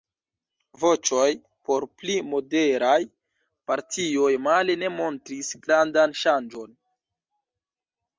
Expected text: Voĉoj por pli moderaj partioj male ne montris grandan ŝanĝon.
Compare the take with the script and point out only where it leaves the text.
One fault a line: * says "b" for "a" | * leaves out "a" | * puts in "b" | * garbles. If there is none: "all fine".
all fine